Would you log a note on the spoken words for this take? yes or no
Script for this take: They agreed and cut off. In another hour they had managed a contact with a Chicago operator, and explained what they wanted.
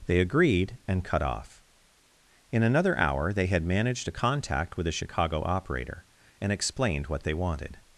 no